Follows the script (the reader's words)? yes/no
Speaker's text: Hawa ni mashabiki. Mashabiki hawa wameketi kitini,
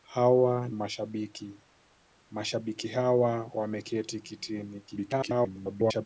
no